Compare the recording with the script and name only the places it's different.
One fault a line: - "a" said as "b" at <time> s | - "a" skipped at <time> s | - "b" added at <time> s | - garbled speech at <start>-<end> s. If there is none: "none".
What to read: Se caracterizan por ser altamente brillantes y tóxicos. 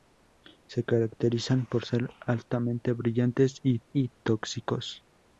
- "y" added at 3.9 s